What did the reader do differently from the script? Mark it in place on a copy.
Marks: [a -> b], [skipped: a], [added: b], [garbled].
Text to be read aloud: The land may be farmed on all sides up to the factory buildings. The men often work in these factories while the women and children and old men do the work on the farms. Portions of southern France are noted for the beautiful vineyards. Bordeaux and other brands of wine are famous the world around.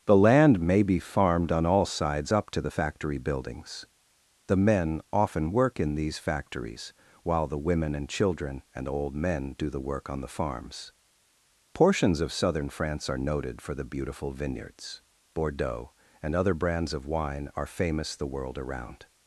The land may be farmed on all sides up to the factory buildings. The men often work in these factories while the women and children and old men do the work on the farms. Portions of southern France are noted for the beautiful vineyards. Bordeaux and other brands of wine are famous the world around.